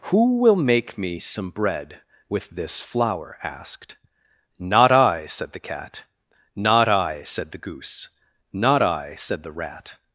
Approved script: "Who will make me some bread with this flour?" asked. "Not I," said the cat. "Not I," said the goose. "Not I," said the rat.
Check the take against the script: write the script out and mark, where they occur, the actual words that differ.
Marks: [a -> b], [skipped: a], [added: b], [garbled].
"Who will make me some bread with this flour?" asked. "Not I," said the cat. "Not I," said the goose. "Not I," said the rat.